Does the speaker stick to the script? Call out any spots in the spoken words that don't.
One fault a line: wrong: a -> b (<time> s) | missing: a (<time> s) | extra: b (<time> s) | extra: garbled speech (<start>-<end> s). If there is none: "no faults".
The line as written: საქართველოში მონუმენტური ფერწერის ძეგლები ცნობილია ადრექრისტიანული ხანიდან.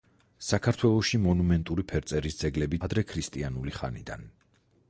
missing: ცნობილია (2.8 s)